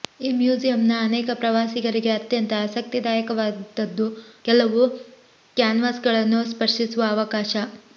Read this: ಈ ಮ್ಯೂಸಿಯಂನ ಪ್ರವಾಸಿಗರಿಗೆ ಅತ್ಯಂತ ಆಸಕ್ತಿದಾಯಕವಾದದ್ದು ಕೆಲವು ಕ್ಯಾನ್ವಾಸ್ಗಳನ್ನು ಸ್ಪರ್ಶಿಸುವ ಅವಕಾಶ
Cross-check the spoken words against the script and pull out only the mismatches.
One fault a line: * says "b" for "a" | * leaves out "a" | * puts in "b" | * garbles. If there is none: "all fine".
* puts in "ಅನೇಕ"